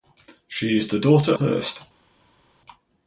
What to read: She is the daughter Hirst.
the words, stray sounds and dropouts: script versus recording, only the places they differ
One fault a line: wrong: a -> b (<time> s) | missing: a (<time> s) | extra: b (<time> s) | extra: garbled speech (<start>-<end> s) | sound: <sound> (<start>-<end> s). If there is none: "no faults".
no faults